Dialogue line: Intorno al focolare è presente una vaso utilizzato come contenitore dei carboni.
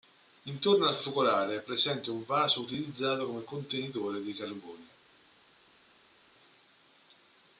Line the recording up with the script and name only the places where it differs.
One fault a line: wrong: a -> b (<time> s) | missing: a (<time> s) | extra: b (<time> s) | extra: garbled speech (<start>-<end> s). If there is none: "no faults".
wrong: una -> un (2.1 s)